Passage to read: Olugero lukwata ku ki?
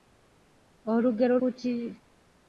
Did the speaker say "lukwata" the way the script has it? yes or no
no